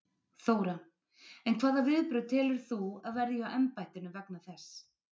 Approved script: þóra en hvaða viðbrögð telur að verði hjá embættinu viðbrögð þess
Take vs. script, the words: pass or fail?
fail